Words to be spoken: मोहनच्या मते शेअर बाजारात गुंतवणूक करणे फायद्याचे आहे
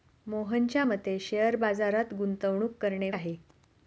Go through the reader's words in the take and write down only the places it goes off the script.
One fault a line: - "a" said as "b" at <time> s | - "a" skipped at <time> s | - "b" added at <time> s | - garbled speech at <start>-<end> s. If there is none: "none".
- "फायद्याचे" skipped at 3.1 s